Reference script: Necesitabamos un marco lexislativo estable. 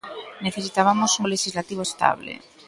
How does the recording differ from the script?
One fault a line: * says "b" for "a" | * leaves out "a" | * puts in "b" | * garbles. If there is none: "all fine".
* leaves out "marco"